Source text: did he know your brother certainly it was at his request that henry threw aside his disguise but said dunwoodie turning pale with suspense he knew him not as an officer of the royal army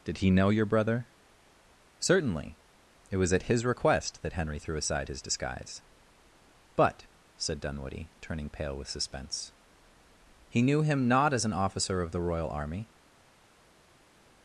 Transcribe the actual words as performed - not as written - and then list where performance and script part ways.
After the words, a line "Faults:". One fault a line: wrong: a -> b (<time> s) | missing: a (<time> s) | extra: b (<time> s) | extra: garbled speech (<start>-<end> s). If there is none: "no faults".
did he know your brother certainly it was at his request that henry threw aside his disguise but said dunwoodie turning pale with suspense he knew him not as an officer of the royal army
Faults:
no faults